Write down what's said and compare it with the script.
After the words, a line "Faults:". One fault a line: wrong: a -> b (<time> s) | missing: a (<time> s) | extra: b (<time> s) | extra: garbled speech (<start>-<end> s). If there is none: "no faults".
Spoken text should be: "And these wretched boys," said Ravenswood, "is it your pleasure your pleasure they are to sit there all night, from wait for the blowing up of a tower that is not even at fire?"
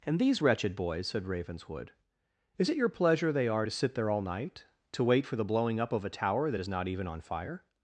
"And these wretched boys," said Ravenswood, "is it your pleasure they are to sit there all night, to wait for the blowing up of a tower that is not even on fire?"
Faults:
missing: your pleasure (3.3 s)
wrong: from -> to (4.9 s)
wrong: at -> on (7.1 s)